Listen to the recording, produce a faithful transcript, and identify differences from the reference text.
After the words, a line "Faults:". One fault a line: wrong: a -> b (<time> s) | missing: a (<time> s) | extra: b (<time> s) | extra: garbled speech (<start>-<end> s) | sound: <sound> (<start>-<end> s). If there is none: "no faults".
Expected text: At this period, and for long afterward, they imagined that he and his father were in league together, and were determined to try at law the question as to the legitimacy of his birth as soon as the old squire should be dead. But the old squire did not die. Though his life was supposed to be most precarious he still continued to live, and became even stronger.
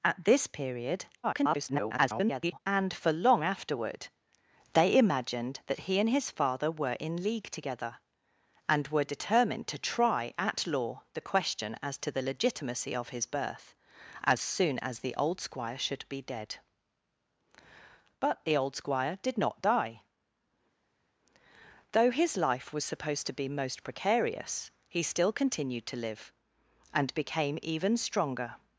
At this period, [garbled] and for long afterward, they imagined that he and his father were in league together, and were determined to try at law the question as to the legitimacy of his birth as soon as the old squire should be dead. But the old squire did not die. Though his life was supposed to be most precarious he still continued to live, and became even stronger.
Faults:
extra: garbled speech (1.2-2.6 s)